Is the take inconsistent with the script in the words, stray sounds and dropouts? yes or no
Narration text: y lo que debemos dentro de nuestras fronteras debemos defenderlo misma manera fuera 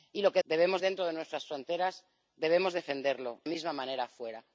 no